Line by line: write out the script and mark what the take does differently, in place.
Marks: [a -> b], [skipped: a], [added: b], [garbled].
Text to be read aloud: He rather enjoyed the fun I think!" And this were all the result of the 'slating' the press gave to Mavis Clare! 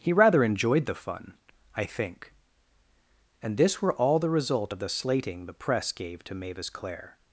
He rather enjoyed the fun I think!" And this were all the result of the 'slating' the press gave to Mavis Clare!